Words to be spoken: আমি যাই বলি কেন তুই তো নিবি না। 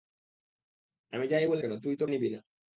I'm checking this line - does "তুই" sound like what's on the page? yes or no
yes